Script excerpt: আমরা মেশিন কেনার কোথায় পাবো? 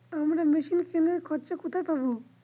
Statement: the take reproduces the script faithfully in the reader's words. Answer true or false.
false